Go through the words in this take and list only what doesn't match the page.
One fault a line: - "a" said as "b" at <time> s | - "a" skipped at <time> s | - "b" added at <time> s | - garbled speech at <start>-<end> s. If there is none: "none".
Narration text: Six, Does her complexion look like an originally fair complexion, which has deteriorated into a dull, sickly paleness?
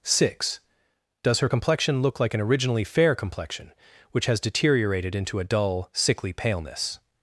none